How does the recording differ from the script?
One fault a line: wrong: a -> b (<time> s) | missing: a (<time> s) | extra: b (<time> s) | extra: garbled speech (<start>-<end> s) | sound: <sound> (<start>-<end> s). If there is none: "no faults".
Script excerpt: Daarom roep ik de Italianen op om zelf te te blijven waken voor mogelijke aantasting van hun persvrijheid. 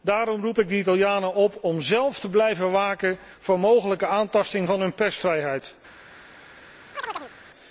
missing: te (2.3 s)
sound: chirp (7.0-7.3 s)